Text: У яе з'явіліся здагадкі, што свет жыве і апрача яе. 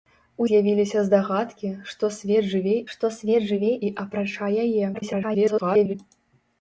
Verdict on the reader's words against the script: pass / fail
fail